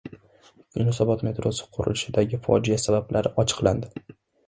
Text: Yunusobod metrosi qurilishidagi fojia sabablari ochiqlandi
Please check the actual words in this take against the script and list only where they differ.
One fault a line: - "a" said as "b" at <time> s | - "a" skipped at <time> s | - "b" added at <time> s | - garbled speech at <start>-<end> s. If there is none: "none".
none